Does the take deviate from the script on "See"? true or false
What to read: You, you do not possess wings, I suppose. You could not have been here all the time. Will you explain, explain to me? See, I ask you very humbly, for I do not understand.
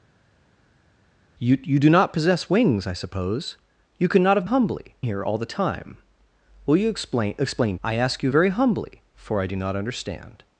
true